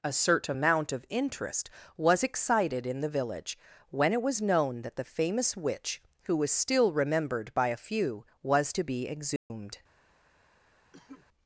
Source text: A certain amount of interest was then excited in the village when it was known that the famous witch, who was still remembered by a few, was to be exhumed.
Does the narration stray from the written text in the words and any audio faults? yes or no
yes